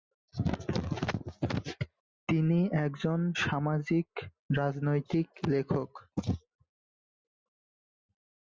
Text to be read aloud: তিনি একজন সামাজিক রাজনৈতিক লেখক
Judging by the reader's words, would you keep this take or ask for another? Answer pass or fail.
pass